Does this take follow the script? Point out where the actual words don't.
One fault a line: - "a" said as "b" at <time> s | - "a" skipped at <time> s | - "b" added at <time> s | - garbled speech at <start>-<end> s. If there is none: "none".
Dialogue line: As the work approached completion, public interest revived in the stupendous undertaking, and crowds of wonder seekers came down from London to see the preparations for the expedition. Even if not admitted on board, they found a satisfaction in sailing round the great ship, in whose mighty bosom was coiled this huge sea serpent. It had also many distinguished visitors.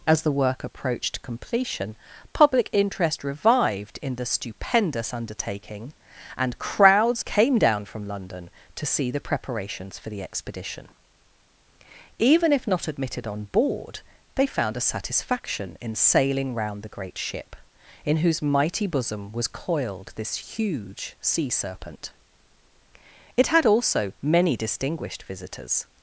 - "of wonder seekers" skipped at 7.2 s